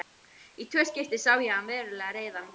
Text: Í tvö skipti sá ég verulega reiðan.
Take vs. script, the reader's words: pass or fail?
fail